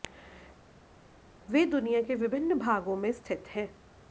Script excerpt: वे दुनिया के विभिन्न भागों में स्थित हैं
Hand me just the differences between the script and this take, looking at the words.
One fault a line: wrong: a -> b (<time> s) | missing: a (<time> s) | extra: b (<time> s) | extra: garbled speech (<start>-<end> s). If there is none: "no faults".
no faults